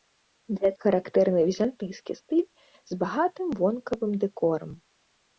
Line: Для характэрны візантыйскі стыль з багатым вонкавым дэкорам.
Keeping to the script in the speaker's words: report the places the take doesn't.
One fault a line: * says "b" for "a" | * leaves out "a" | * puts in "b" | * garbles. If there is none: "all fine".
all fine